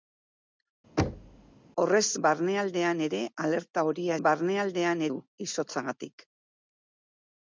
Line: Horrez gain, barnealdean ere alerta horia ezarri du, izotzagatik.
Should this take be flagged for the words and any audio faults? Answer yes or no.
yes